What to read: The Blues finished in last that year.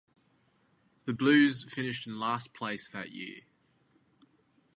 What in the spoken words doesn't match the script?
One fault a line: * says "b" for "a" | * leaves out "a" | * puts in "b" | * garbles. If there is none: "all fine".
* puts in "place"